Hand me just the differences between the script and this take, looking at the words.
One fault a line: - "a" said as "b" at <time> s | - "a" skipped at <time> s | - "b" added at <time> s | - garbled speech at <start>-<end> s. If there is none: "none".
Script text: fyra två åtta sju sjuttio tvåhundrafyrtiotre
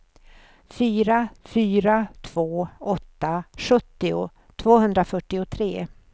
- "fyra" added at 1.4 s
- "sju" skipped at 3.4 s